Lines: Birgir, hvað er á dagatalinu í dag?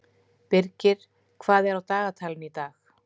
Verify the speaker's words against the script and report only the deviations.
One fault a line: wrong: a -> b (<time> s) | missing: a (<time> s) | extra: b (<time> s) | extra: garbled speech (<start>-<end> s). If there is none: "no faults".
no faults